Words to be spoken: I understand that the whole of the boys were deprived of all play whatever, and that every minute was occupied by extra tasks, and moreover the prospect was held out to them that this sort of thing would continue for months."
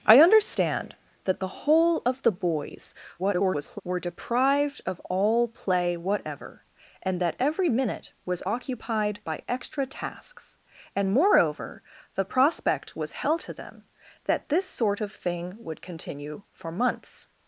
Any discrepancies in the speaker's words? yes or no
yes